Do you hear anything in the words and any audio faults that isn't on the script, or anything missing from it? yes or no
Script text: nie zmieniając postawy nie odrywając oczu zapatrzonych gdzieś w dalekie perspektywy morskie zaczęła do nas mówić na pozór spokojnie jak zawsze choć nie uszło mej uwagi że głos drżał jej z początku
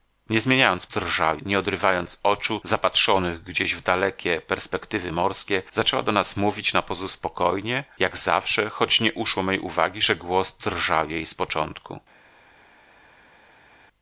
yes